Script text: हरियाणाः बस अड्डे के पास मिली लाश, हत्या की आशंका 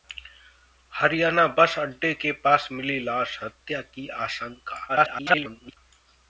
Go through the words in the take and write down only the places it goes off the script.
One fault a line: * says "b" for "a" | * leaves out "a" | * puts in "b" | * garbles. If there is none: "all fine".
* garbles